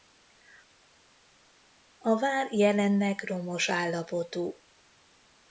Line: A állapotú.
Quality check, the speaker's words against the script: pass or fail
fail